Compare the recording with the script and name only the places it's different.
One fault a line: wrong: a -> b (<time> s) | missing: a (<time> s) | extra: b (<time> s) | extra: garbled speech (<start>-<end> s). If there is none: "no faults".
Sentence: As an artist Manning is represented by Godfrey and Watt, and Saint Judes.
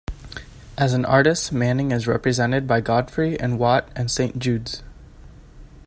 no faults